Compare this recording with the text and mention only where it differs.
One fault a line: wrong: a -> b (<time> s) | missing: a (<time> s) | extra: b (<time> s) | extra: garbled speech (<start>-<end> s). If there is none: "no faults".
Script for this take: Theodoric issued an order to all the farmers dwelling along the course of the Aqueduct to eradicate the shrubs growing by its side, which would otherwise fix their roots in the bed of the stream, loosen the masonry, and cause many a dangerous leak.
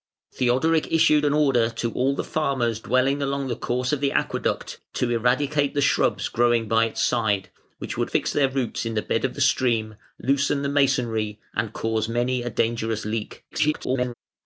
missing: otherwise (8.1 s)
extra: garbled speech (13.5-14.1 s)